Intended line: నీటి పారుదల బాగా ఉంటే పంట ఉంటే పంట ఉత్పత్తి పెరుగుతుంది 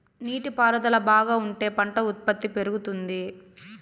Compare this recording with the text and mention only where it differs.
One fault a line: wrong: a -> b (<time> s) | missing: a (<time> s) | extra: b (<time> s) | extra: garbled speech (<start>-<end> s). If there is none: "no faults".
missing: ఉంటే పంట (2.0 s)